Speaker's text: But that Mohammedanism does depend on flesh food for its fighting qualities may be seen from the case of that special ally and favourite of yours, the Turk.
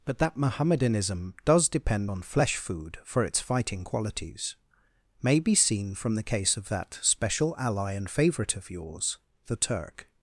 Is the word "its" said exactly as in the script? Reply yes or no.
yes